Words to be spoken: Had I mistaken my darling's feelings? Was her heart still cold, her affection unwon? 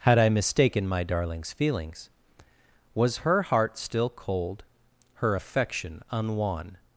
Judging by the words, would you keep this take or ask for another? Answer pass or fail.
pass